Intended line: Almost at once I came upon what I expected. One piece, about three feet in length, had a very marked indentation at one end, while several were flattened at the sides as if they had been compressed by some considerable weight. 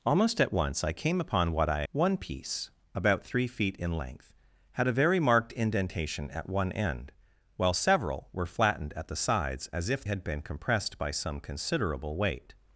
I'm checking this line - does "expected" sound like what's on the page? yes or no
no